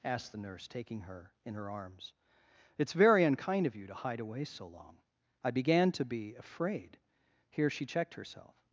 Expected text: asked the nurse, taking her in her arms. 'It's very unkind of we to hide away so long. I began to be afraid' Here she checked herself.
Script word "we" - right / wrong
wrong